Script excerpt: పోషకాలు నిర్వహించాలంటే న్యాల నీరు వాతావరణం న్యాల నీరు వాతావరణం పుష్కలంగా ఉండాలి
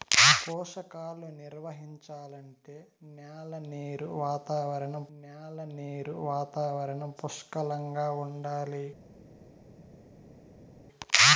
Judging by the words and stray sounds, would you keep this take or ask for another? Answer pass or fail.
pass